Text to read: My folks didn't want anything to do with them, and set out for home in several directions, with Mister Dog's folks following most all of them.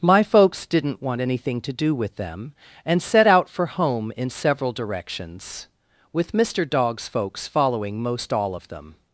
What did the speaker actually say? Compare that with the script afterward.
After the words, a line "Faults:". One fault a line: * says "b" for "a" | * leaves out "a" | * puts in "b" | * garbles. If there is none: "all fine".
My folks didn't want anything to do with them, and set out for home in several directions, with Mister Dog's folks following most all of them.
Faults:
all fine